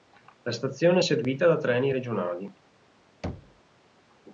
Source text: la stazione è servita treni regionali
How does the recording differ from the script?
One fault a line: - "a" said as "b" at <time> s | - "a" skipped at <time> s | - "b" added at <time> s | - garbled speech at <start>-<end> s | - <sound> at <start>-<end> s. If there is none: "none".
- "da" added at 1.5 s
- thud at 3.2-3.6 s